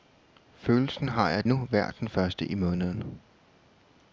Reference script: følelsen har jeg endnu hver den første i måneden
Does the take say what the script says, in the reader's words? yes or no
yes